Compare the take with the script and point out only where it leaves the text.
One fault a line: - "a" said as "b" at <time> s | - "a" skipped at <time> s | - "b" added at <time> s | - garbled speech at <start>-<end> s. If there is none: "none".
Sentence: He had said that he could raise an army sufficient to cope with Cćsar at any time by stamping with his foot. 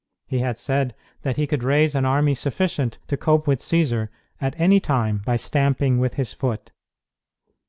none